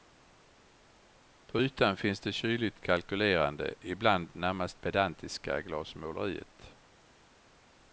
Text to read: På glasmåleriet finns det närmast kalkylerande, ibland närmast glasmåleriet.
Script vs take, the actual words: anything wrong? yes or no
yes